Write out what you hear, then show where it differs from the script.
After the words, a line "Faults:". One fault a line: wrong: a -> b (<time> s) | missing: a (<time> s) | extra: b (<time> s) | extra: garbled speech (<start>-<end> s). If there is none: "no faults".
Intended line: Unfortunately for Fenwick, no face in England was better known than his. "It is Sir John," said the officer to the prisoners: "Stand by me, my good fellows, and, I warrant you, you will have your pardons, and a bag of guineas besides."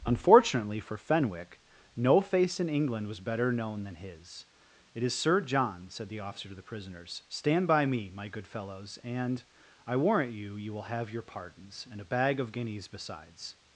Unfortunately for Fenwick, no face in England was better known than his. "It is Sir John," said the officer to the prisoners: "Stand by me, my good fellows, and, I warrant you, you will have your pardons, and a bag of guineas besides."
Faults:
no faults